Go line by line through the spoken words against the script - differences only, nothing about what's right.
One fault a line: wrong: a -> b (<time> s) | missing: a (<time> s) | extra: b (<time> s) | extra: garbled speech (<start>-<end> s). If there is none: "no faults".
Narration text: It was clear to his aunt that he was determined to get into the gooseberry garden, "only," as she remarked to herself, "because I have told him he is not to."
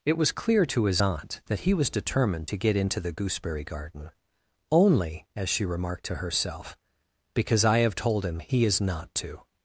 no faults